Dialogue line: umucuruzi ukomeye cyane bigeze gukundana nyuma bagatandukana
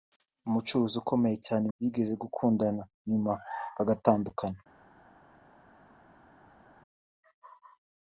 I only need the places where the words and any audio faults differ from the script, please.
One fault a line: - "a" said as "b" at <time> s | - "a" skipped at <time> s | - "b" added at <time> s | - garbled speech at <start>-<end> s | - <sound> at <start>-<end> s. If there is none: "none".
none